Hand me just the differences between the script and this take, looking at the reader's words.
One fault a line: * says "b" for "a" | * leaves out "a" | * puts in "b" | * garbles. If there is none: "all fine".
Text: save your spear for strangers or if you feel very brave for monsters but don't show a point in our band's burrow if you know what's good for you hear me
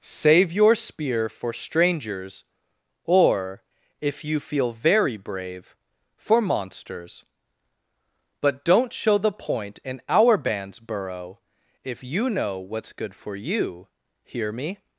* says "the" for "a"